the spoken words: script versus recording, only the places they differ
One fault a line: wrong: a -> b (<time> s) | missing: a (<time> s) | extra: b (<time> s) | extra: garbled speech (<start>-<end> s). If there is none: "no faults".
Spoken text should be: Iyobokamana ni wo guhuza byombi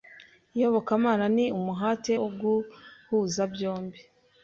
extra: umuhate (1.6 s)